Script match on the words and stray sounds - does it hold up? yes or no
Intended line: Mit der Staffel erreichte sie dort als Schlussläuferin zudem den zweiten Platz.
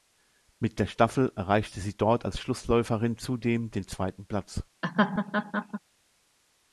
no